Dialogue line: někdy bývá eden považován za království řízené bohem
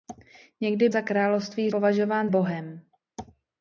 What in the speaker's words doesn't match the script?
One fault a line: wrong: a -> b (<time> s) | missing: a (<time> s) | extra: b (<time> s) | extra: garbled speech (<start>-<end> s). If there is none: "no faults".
missing: bývá eden považován (0.9 s)
wrong: řízené -> považován (1.7 s)